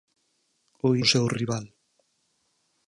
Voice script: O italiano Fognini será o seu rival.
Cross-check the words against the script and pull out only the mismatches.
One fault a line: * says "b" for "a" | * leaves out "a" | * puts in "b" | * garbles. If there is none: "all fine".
* leaves out "italiano Fognini será"